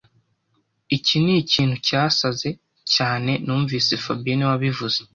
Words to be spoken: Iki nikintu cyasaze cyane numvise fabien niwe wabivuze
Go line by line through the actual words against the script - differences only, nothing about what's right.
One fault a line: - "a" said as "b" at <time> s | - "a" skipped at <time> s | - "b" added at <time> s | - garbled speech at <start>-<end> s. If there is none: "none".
none